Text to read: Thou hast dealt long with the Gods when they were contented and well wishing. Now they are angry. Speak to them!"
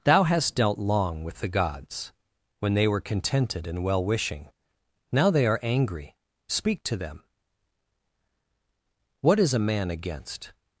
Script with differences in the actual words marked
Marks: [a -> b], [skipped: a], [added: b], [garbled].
Thou hast dealt long with the Gods when they were contented and well wishing. Now they are angry. Speak to them!" [added: What is a man against]